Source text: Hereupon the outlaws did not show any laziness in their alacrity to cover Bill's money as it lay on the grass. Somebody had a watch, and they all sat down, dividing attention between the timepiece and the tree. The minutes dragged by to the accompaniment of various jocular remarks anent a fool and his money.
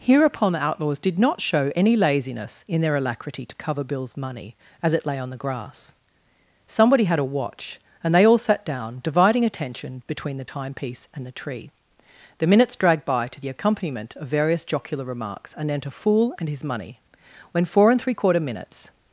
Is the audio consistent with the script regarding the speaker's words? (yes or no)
no